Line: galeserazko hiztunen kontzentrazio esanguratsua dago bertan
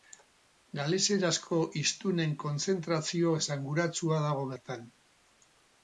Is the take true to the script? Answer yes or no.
yes